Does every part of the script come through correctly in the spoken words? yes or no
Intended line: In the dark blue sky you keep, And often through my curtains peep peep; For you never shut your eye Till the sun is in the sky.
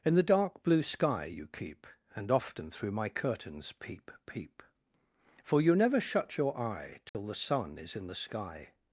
yes